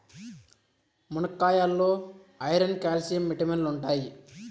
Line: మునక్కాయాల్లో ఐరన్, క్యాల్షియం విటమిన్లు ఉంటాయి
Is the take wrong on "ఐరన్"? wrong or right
right